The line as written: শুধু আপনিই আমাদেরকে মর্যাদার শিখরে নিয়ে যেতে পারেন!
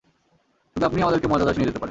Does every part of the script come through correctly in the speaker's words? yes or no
no